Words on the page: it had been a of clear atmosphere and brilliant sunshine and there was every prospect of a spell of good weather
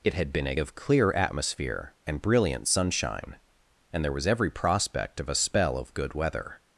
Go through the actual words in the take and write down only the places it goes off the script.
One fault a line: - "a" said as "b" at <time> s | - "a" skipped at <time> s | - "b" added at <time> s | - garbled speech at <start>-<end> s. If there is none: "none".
none